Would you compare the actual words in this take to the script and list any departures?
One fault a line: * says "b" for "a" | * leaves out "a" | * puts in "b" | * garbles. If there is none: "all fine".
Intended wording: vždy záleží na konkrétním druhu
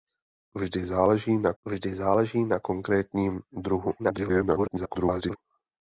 * puts in "vždy záleží na"
* garbles